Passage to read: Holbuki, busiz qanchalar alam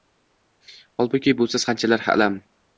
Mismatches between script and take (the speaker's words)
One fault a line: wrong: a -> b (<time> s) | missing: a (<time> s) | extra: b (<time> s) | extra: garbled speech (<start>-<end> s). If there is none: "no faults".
no faults